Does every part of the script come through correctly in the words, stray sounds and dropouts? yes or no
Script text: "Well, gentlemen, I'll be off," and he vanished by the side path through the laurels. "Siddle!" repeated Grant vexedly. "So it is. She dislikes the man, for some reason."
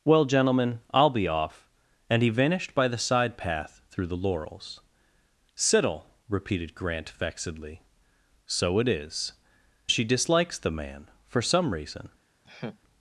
no